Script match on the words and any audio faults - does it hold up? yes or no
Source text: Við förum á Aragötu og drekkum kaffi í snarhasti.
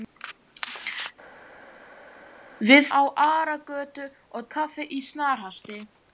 no